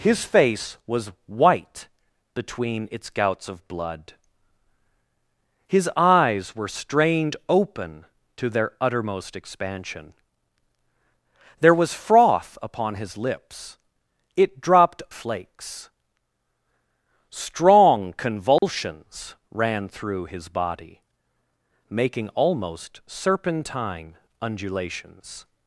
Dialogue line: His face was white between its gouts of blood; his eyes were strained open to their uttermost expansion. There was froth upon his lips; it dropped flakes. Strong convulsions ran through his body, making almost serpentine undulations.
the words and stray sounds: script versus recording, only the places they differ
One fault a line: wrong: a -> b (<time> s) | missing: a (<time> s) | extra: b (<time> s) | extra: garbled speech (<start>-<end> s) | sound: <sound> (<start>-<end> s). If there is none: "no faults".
sound: dropout (18.6-18.6 s)